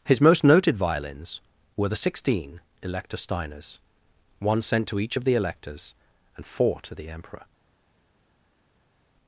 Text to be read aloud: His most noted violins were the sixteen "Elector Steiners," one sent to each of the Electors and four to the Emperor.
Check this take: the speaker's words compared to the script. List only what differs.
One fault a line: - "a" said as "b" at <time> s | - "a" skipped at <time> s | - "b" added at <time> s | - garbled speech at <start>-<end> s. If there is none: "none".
none